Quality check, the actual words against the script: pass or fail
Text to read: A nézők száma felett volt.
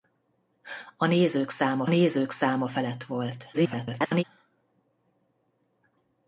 fail